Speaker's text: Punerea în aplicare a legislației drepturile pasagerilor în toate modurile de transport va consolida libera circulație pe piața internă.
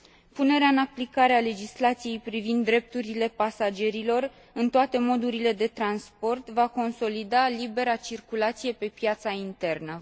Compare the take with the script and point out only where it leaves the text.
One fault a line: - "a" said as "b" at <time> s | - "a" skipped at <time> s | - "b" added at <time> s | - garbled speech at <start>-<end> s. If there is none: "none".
- "privind" added at 2.2 s